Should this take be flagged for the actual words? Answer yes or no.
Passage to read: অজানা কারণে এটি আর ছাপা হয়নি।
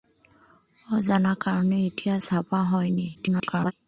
yes